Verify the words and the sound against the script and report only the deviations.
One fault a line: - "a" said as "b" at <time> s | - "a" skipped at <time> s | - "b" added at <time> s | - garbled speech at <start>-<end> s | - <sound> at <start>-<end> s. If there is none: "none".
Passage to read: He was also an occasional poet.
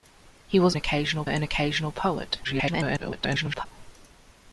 - "also" said as "occasional" at 0.7 s
- garbled speech at 2.4-3.7 s